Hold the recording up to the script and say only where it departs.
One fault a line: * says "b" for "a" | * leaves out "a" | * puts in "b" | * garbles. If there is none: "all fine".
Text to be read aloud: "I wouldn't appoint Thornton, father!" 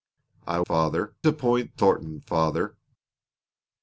* says "father" for "wouldn't"